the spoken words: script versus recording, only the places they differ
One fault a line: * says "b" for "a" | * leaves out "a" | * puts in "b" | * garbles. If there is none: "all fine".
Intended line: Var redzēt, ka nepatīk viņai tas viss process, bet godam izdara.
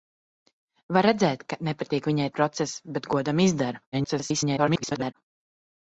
* leaves out "tas viss"
* garbles